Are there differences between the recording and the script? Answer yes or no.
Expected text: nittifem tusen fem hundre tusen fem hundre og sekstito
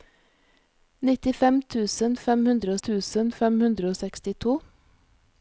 no